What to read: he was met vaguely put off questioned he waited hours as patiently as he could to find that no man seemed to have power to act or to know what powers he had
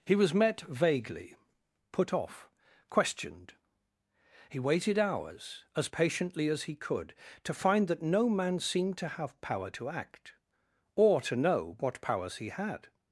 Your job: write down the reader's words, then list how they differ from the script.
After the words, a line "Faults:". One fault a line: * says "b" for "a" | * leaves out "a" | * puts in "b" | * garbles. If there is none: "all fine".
he was met vaguely put off questioned he waited hours as patiently as he could to find that no man seemed to have power to act or to know what powers he had
Faults:
all fine